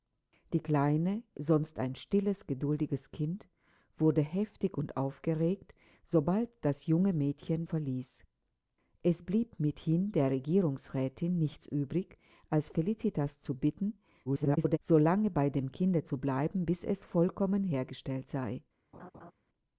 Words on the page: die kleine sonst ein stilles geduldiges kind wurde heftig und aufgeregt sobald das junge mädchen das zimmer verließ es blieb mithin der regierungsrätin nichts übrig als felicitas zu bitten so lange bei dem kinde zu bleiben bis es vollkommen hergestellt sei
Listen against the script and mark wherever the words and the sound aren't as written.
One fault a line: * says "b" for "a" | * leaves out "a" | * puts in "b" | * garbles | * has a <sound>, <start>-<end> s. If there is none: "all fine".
* leaves out "das zimmer"
* garbles
* has a laugh, 18.9-19.3 s